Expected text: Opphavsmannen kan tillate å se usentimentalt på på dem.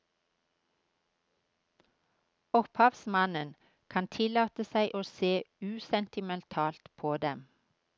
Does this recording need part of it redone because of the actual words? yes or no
yes